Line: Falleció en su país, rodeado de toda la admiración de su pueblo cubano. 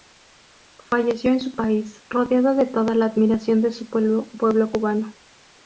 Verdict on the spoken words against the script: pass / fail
pass